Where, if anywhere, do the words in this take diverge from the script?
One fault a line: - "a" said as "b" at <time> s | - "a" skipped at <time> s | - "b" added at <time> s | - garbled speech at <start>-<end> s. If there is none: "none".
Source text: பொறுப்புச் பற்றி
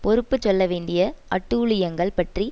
- "சொல்ல வேண்டிய அட்டூழியங்கள்" added at 0.4 s